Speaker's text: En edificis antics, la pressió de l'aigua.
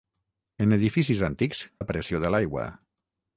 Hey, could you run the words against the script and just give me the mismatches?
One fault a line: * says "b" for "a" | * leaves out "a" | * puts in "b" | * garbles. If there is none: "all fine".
all fine